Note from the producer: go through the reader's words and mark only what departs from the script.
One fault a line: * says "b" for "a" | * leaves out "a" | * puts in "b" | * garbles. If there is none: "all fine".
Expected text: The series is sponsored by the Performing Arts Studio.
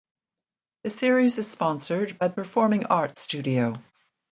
all fine